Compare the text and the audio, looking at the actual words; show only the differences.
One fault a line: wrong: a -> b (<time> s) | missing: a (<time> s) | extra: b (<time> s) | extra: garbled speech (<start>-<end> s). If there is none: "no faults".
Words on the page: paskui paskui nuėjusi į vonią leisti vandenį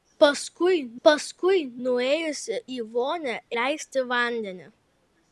no faults